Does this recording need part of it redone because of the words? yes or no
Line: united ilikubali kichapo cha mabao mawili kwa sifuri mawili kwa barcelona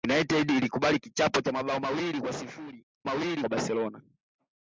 no